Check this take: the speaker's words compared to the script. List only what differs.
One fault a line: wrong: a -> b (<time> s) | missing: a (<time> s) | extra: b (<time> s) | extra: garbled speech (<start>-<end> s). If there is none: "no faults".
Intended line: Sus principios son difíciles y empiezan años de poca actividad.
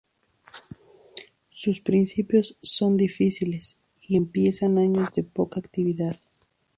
no faults